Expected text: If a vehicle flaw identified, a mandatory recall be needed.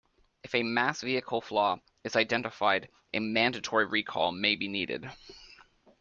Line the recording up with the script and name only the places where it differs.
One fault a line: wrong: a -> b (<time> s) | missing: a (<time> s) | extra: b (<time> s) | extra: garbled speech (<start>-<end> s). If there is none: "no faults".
extra: mass (0.6 s)
extra: is (2.0 s)
extra: may (4.3 s)